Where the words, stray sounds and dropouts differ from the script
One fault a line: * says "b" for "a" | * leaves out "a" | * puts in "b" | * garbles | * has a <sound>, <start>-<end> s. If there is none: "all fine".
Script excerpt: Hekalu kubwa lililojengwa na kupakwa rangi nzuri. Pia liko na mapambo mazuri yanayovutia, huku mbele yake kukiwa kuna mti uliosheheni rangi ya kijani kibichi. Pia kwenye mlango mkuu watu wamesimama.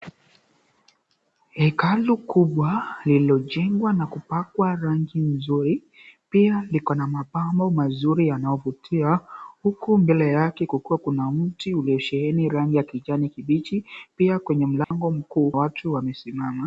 * has a dropout, 14.8-14.9 s